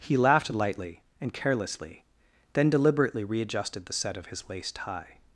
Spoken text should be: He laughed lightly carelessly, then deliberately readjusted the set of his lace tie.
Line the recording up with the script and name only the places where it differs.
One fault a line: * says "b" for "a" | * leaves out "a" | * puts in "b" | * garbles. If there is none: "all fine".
* puts in "and"